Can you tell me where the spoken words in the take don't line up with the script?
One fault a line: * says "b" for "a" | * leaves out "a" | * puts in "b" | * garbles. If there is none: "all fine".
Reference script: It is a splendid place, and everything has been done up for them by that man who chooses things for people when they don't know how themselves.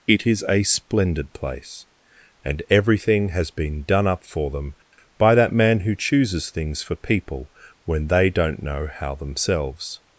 all fine